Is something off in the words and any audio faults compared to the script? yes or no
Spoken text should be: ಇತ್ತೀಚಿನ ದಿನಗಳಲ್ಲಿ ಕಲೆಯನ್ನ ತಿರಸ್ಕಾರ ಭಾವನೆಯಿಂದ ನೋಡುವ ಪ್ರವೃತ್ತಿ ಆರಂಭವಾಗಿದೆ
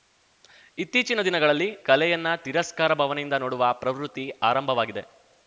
no